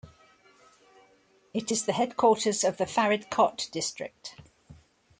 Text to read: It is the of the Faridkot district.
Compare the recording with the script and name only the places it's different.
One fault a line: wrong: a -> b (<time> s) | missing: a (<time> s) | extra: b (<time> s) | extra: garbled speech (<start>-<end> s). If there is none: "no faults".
extra: headquarters (1.9 s)